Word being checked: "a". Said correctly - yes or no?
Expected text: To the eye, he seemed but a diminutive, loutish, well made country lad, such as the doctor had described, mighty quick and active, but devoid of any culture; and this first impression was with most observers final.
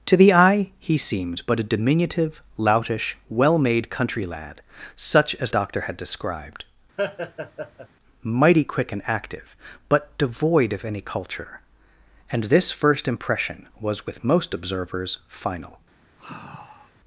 yes